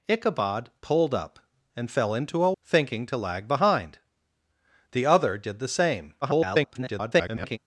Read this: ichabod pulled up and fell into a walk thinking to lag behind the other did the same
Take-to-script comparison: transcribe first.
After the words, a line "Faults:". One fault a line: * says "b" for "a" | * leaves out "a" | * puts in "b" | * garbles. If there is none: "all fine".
ichabod pulled up and fell into a thinking to lag behind the other did the same [garbled]
Faults:
* leaves out "walk"
* garbles